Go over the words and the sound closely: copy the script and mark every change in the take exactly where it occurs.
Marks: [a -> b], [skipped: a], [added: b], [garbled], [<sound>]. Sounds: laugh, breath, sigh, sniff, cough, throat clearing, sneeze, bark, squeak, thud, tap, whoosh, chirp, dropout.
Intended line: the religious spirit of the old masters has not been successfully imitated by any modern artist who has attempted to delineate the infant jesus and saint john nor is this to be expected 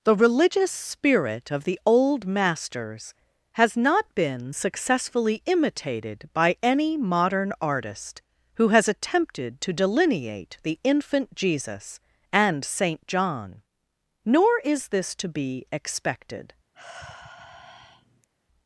the religious spirit of the old masters has not been successfully imitated by any modern artist who has attempted to delineate the infant jesus and saint john nor is this to be expected [sigh]